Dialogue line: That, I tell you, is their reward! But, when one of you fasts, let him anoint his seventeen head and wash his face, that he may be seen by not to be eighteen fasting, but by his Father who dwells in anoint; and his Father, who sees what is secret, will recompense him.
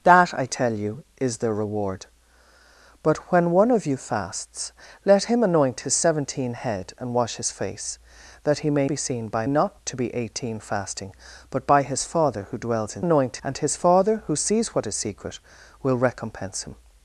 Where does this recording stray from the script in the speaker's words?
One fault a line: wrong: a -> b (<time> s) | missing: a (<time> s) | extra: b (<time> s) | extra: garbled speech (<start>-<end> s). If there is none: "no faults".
no faults